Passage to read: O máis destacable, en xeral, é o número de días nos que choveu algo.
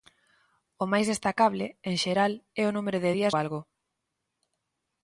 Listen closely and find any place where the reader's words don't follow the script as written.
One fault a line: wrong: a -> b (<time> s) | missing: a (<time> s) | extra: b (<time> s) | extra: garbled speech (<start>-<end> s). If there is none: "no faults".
missing: nos que choveu (3.4 s)